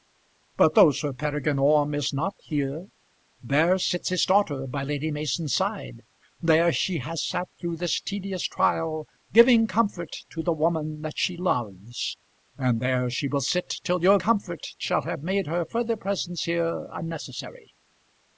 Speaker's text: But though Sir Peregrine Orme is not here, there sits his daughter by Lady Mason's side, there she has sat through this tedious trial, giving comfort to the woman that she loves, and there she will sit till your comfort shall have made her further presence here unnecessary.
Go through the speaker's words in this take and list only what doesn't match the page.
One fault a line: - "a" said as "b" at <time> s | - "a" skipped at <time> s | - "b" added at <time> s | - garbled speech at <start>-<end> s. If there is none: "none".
none